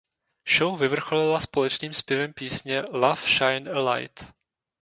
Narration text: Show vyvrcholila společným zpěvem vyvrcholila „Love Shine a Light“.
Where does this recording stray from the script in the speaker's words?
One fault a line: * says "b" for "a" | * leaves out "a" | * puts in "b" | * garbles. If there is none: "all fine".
* says "písně" for "vyvrcholila"